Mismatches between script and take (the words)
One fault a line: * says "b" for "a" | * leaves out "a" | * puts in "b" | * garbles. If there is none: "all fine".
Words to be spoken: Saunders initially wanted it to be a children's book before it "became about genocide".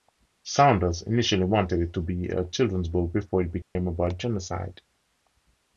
all fine